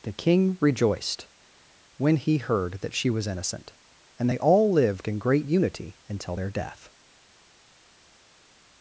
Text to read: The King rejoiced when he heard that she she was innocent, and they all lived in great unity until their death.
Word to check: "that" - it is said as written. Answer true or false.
true